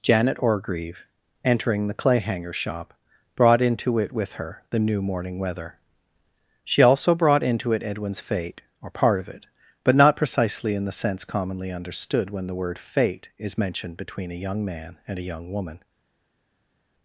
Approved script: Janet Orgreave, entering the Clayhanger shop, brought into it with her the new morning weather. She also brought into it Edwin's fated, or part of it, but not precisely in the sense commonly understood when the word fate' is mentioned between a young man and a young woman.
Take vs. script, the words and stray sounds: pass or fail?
fail